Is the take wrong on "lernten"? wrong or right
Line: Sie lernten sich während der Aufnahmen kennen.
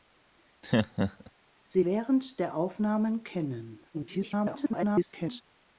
wrong